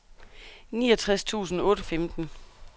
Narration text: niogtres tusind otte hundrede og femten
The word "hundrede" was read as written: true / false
false